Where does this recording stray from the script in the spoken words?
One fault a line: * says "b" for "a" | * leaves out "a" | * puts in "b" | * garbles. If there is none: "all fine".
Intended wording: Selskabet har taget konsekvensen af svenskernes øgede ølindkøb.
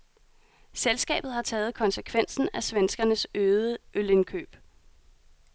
all fine